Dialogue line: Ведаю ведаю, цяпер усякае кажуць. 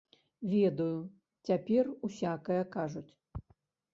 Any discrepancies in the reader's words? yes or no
yes